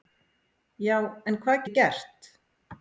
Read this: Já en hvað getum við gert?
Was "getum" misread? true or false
true